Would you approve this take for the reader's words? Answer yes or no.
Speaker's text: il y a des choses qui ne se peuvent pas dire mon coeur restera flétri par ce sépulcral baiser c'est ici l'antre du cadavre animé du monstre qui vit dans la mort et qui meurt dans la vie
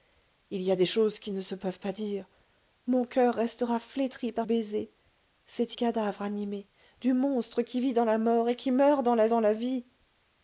no